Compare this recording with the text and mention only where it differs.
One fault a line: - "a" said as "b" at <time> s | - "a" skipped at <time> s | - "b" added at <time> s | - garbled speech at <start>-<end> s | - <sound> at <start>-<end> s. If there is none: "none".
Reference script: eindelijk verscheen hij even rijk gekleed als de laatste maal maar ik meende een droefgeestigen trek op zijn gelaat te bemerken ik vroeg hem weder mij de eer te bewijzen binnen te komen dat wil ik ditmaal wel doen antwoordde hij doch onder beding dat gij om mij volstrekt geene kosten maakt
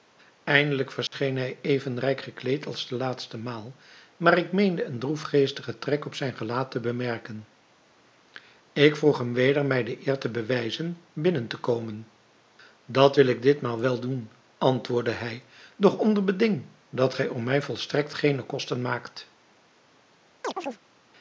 - dropout at 1.1-1.1 s
- chirp at 20.4-20.8 s